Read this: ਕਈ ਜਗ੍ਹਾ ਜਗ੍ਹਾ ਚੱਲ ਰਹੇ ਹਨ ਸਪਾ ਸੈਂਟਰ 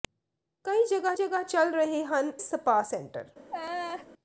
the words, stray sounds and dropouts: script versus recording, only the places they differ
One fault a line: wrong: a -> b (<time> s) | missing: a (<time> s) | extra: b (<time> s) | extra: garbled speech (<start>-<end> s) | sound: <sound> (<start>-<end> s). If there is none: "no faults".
sound: laugh (3.5-4.1 s)